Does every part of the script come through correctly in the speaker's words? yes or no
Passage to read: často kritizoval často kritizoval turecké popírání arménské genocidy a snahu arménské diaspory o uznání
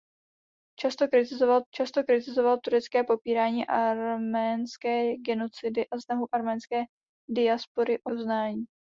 yes